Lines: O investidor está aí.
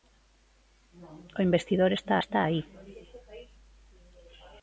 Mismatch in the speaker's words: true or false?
true